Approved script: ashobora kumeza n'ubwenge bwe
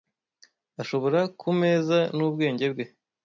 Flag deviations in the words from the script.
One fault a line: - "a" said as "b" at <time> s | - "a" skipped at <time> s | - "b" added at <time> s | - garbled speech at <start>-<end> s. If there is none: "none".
none